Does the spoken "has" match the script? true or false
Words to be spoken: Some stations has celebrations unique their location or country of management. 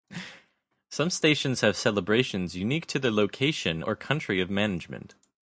false